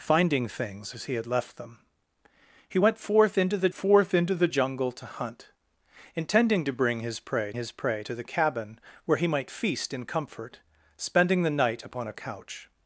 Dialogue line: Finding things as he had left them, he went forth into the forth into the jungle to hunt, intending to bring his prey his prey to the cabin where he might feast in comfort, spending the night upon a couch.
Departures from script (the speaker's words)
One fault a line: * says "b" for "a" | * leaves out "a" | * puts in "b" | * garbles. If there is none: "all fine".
all fine